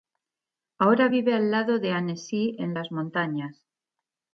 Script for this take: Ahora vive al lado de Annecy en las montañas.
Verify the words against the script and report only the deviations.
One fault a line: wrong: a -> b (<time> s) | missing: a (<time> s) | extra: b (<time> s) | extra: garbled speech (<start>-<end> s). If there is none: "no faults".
no faults